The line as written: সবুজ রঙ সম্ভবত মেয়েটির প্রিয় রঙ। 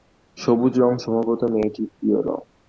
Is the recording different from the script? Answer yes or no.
no